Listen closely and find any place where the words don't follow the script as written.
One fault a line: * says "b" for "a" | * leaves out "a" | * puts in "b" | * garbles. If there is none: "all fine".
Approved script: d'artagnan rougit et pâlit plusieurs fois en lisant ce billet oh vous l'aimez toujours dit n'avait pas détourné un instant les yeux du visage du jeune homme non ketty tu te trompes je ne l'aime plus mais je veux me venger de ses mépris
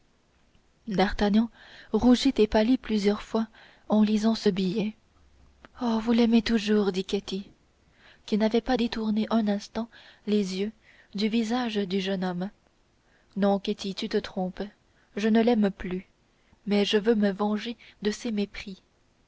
* puts in "ketty qui"